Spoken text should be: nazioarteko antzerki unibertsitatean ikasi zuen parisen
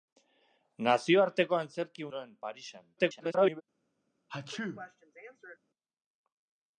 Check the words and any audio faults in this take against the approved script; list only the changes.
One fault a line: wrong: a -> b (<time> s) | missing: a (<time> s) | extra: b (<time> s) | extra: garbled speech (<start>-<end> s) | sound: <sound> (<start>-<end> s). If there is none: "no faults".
missing: unibertsitatean ikasi (2.1 s)
extra: garbled speech (3.0-3.6 s)
sound: sneeze (4.3-5.6 s)